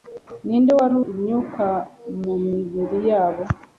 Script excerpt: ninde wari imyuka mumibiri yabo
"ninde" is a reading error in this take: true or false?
false